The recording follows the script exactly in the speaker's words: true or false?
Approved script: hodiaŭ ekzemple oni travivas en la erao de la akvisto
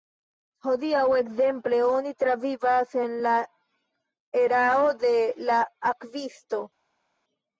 true